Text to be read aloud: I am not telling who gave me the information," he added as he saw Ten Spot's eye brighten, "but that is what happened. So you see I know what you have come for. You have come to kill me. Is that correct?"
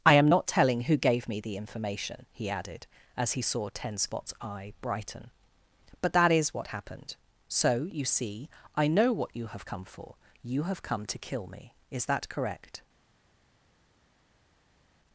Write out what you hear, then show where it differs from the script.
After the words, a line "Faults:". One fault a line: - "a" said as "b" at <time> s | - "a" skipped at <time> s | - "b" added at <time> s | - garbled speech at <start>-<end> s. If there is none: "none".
I am not telling who gave me the information," he added as he saw Ten Spot's eye brighten, "but that is what happened. So you see I know what you have come for. You have come to kill me. Is that correct?"
Faults:
none